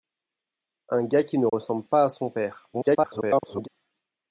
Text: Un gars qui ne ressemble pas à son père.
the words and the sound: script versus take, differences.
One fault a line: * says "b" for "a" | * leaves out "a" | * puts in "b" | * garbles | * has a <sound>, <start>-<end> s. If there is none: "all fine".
* has a dropout, 1.5-1.5 s
* garbles